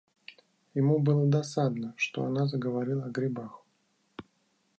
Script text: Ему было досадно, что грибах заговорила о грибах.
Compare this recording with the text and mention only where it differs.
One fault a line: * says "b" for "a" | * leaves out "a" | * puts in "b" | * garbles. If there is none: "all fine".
* says "она" for "грибах"